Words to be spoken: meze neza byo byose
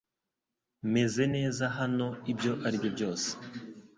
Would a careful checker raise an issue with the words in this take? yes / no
yes